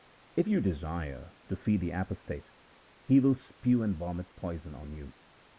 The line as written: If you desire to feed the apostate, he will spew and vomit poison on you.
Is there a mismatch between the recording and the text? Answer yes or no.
no